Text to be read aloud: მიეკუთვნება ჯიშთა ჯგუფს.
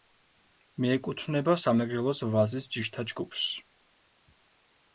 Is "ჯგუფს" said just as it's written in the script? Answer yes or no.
yes